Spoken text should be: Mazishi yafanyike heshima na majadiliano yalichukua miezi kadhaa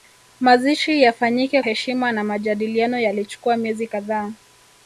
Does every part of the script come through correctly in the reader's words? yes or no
yes